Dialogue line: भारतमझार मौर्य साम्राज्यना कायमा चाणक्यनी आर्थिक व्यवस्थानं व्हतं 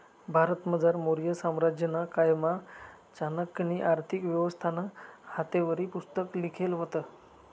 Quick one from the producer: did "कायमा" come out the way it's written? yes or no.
yes